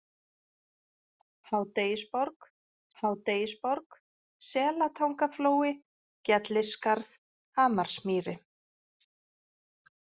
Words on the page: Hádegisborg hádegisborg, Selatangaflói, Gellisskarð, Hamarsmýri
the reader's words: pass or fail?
pass